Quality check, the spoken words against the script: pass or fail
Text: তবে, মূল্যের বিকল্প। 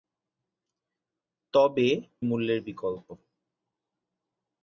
pass